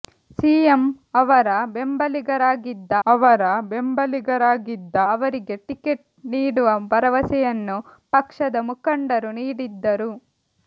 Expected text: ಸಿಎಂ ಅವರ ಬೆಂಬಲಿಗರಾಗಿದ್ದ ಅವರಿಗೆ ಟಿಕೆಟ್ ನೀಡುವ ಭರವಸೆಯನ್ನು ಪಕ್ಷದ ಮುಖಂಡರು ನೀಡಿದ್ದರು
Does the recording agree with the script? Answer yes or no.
no